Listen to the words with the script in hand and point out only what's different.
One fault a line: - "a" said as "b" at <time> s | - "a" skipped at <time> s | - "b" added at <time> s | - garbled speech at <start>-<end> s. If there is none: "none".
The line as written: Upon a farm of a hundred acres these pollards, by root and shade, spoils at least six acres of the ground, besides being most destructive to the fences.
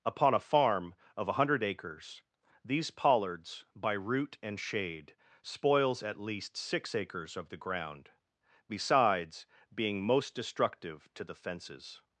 none